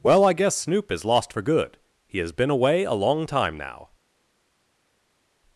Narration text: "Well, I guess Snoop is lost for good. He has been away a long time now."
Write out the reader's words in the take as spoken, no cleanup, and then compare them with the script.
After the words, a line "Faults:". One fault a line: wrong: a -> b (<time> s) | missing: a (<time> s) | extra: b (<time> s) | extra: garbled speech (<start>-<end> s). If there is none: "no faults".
"Well, I guess Snoop is lost for good. He has been away a long time now."
Faults:
no faults